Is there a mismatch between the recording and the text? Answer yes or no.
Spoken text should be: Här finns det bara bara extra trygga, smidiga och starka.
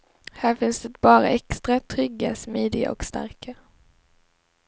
yes